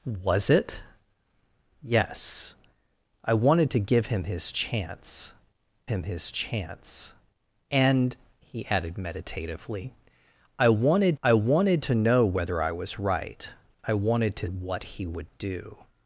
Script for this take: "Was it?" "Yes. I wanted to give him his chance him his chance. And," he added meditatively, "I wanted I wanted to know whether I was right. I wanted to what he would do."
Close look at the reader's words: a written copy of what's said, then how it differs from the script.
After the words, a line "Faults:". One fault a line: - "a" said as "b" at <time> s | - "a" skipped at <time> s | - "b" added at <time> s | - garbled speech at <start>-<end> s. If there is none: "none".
"Was it?" "Yes. I wanted to give him his chance him his chance. And," he added meditatively, "I wanted I wanted to know whether I was right. I wanted to what he would do."
Faults:
none